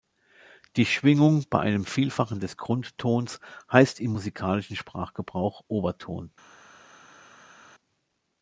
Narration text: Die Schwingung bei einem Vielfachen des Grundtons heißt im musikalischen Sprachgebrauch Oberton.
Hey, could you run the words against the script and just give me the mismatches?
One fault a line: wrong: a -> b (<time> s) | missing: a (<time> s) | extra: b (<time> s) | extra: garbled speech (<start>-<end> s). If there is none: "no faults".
no faults